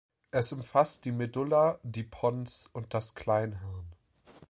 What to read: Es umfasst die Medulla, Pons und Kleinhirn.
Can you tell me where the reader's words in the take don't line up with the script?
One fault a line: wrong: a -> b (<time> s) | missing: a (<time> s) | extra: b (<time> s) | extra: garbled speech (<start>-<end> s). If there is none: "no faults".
extra: die (1.8 s)
extra: das (3.0 s)